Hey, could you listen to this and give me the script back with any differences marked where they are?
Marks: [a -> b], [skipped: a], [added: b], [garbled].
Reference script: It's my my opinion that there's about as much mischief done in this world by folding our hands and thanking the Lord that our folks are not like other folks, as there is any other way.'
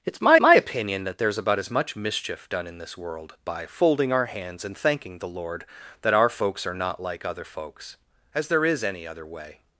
It's my my opinion that there's about as much mischief done in this world by folding our hands and thanking the Lord that our folks are not like other folks, as there is any other way.'